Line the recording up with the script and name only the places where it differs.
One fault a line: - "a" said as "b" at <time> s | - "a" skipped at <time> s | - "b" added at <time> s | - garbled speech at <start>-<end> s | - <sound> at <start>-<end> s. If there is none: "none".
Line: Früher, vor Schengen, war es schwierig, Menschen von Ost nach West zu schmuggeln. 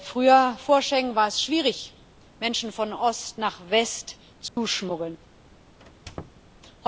- dropout at 4.5-4.6 s
- squeak at 5.8-6.4 s